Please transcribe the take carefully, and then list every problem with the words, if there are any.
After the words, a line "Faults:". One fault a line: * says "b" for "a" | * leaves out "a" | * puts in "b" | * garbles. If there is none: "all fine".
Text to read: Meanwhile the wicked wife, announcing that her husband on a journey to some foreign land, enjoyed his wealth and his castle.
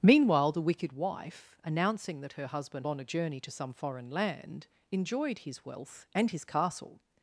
Meanwhile the wicked wife, announcing that her husband on a journey to some foreign land, enjoyed his wealth and his castle.
Faults:
all fine